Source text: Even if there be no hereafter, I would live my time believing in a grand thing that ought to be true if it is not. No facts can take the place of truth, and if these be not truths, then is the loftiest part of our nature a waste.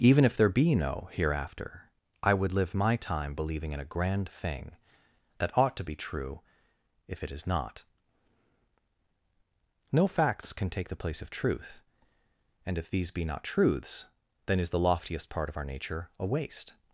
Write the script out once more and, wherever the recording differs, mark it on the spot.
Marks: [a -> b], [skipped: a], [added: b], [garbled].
Even if there be no hereafter, I would live my time believing in a grand thing that ought to be true if it is not. No facts can take the place of truth, and if these be not truths, then is the loftiest part of our nature a waste.